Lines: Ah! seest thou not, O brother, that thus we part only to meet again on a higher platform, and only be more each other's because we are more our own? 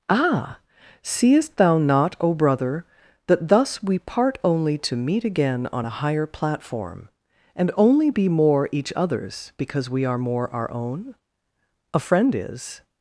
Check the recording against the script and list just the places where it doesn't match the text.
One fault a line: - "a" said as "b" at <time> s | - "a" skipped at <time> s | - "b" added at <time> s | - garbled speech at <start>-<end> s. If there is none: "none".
- "A friend is" added at 11.9 s